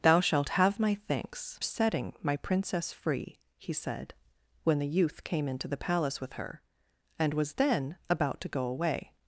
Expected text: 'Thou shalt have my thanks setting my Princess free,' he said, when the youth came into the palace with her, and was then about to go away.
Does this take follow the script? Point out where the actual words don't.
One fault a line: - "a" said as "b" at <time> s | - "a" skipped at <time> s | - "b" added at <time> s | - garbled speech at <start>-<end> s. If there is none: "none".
none